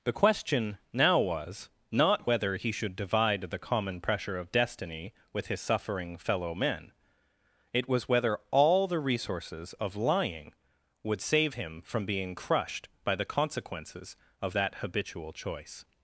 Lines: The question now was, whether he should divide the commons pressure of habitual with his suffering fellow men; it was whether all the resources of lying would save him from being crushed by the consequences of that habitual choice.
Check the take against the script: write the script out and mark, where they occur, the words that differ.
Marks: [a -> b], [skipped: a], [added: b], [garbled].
The question now was, [added: not] whether he should divide the [commons -> common] pressure of [habitual -> destiny] with his suffering fellow men; it was whether all the resources of lying would save him from being crushed by the consequences of that habitual choice.